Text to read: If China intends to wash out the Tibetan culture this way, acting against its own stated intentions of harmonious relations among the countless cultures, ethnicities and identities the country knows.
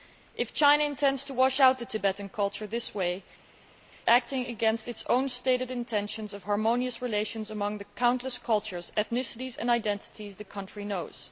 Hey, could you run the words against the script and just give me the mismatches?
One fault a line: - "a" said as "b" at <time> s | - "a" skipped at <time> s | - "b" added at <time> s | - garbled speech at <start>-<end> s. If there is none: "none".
none